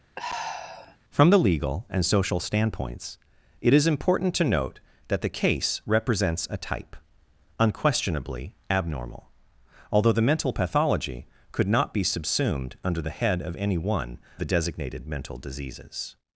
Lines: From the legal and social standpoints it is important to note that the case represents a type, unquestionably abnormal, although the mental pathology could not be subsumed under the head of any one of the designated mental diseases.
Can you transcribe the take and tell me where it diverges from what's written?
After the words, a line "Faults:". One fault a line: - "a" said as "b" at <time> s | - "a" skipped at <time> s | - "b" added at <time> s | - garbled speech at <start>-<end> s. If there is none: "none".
From the legal and social standpoints it is important to note that the case represents a type, unquestionably abnormal, although the mental pathology could not be subsumed under the head of any one the designated mental diseases.
Faults:
- "of" skipped at 14.2 s